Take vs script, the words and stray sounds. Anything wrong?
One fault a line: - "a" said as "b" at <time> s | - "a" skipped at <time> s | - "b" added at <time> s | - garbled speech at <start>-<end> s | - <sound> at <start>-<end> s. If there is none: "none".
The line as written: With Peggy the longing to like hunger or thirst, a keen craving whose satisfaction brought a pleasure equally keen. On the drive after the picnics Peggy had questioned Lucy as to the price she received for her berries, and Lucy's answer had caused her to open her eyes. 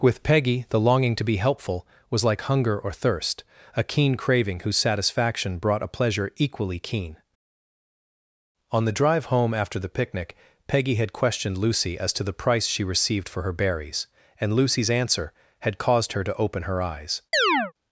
- "be helpful was" added at 1.2 s
- "home" added at 9.2 s
- "picnics" said as "picnic" at 9.9 s
- chirp at 17.3-17.7 s